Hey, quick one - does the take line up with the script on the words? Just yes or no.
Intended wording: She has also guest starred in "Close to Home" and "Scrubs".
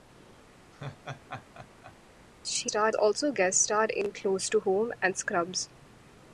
no